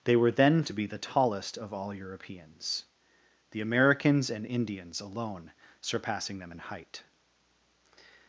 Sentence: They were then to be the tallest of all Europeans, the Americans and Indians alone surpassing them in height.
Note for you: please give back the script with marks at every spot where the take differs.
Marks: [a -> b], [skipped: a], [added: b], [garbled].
They were then to be the tallest of all Europeans, the Americans and Indians alone surpassing them in height.